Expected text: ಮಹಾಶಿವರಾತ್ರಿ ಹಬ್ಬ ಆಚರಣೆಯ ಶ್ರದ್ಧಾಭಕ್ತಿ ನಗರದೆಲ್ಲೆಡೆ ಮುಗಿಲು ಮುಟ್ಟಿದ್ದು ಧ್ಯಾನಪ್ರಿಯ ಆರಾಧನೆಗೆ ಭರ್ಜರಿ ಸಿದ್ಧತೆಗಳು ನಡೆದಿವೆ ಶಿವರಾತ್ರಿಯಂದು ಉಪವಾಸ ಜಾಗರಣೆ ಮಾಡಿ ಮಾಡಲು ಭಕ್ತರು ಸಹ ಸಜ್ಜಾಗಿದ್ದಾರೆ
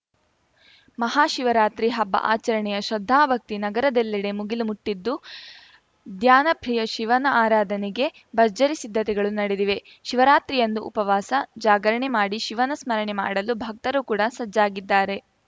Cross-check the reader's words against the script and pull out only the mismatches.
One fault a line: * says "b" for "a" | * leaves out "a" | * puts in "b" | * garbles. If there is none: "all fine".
* puts in "ಶಿವನ"
* puts in "ಶಿವನ ಸ್ಮರಣೆ"
* says "ಕೂಡ" for "ಸಹ"